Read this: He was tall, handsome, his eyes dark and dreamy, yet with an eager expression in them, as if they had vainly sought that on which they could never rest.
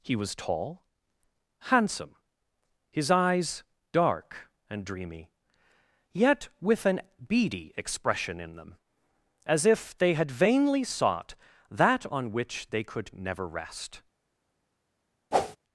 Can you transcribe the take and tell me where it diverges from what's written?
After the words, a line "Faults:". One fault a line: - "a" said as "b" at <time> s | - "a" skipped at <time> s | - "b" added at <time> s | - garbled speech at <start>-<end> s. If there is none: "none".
He was tall, handsome, his eyes dark and dreamy, yet with an beady expression in them, as if they had vainly sought that on which they could never rest.
Faults:
- "eager" said as "beady" at 7.3 s